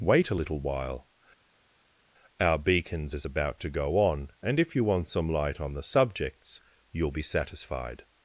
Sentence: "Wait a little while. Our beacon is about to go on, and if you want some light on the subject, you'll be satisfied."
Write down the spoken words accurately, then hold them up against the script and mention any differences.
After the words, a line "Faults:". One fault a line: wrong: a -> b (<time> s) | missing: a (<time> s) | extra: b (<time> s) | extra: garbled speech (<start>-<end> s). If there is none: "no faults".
"Wait a little while. Our beacons is about to go on, and if you want some light on the subjects, you'll be satisfied."
Faults:
wrong: beacon -> beacons (2.6 s)
wrong: subject -> subjects (5.8 s)